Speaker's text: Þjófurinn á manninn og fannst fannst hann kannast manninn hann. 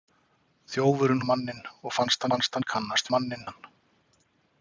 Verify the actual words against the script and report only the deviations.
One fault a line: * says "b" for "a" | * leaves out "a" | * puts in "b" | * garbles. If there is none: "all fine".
all fine